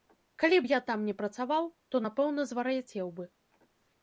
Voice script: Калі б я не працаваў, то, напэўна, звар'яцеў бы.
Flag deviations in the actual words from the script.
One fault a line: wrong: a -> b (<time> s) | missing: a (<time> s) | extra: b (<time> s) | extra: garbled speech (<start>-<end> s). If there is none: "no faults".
extra: там (0.9 s)